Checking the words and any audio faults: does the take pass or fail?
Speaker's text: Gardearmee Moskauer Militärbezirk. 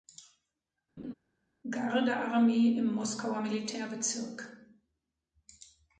fail